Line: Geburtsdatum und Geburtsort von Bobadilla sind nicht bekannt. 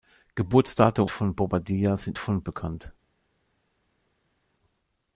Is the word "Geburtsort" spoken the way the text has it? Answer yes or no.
no